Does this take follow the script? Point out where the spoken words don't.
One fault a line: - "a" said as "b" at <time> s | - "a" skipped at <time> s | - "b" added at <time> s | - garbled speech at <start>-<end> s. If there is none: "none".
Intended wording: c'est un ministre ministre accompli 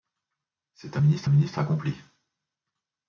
none